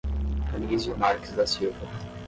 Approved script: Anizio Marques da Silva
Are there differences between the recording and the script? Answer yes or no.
no